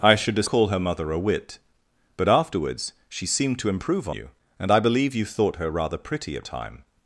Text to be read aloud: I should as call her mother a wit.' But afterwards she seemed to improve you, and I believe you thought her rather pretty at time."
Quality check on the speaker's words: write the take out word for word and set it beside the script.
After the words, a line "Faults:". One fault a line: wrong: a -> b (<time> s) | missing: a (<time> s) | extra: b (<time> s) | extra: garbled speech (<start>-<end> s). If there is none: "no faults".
I should as call her mother a wit.' But afterwards she seemed to improve you, and I believe you thought her rather pretty at time."
Faults:
no faults